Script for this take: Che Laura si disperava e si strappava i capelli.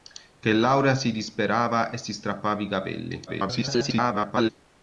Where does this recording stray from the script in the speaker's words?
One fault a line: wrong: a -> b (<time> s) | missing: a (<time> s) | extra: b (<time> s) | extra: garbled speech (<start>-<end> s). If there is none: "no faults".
extra: garbled speech (3.3-4.5 s)